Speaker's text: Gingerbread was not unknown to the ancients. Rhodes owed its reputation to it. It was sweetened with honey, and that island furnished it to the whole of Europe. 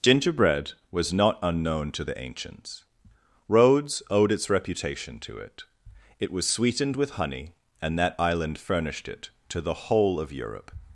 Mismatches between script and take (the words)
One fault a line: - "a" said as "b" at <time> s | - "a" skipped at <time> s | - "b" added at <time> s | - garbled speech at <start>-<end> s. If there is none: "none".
none